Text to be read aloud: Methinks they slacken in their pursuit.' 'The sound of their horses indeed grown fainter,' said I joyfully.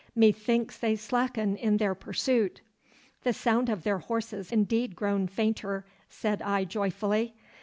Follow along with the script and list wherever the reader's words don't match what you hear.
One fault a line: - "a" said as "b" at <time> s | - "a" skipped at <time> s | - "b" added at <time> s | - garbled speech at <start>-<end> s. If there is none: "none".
none